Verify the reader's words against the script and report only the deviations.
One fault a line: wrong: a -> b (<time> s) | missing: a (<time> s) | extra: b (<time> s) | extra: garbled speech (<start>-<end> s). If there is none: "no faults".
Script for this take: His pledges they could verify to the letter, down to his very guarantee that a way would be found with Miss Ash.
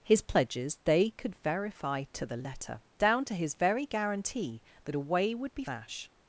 missing: found with Miss (5.6 s)